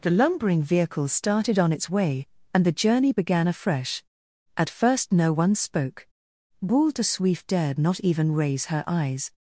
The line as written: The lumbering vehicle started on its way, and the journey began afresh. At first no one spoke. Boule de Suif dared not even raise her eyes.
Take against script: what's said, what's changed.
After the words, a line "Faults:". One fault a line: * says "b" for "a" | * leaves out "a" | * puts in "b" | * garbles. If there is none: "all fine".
The lumbering vehicle started on its way, and the journey began afresh. At first no one spoke. Boule de Suif dared not even raise her eyes.
Faults:
all fine